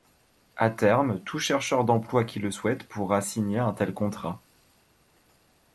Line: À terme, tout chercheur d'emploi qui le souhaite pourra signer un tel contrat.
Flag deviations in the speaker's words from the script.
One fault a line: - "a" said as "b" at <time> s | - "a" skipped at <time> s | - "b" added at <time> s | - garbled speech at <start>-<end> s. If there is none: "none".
none